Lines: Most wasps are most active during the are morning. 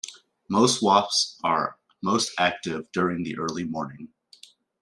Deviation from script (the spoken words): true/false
true